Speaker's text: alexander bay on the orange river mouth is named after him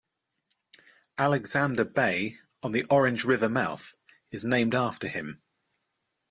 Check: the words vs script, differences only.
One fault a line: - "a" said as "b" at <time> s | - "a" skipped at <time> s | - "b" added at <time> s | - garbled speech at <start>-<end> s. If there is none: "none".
none